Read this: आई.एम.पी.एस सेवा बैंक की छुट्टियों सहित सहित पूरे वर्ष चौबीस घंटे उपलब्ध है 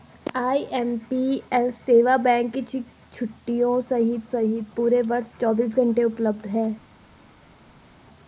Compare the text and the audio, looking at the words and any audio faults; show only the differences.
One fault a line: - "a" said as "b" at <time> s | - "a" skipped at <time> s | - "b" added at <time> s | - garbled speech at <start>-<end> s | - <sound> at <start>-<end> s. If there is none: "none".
none